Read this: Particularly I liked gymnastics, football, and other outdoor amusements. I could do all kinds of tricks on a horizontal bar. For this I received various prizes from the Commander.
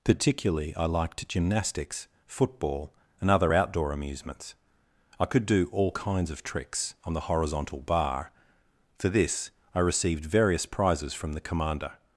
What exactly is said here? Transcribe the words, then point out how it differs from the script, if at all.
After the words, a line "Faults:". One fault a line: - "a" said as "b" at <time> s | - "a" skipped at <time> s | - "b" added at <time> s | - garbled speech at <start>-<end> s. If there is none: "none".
Particularly I liked gymnastics, football, and other outdoor amusements. I could do all kinds of tricks on the horizontal bar. For this I received various prizes from the Commander.
Faults:
- "a" said as "the" at 7.1 s